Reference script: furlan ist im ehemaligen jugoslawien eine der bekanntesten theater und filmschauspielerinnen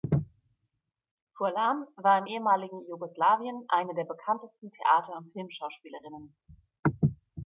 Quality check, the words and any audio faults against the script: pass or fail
fail